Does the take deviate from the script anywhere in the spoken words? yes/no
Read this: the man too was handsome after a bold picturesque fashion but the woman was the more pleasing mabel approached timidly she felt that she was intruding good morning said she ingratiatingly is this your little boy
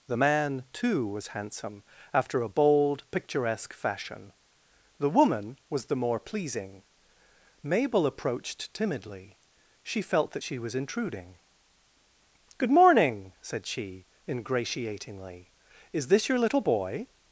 yes